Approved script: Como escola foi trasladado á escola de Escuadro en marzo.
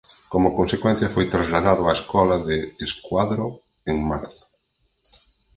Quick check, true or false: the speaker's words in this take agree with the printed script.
false